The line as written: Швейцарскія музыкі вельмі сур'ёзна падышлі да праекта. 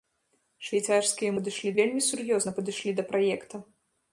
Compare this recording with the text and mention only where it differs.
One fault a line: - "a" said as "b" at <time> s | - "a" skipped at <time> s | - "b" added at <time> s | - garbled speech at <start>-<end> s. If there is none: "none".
- "музыкі" said as "падышлі" at 1.4 s